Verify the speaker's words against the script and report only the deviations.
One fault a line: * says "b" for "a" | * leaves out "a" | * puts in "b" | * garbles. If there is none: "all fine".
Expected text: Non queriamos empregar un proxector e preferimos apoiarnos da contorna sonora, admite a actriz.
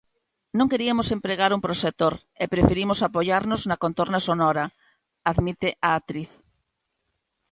* says "na" for "da"